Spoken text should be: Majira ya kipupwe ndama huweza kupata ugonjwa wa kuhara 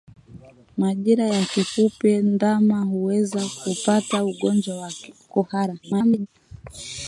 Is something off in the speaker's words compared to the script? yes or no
yes